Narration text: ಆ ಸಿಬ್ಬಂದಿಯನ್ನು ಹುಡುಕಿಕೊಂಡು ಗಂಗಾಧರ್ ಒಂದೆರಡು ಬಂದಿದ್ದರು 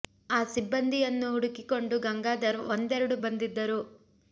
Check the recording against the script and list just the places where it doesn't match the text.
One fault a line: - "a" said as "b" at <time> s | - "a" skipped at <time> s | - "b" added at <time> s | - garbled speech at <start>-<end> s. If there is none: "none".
none